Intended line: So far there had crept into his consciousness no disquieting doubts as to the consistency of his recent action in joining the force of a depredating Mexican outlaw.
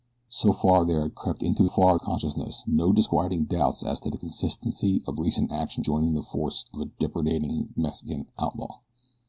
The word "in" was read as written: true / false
false